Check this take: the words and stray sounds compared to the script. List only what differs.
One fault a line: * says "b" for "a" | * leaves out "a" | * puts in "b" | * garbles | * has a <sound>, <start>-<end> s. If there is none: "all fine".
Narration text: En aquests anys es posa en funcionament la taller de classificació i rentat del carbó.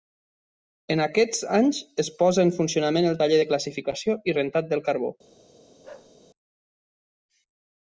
* says "el" for "la"
* has a bark, 5.8-6.1 s